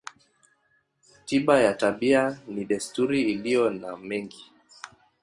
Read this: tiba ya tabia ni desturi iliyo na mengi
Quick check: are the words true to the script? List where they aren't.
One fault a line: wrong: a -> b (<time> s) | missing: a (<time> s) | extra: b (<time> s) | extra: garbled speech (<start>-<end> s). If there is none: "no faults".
no faults